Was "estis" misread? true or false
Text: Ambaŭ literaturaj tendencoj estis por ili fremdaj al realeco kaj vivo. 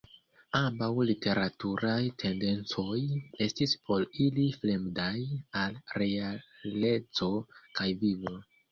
false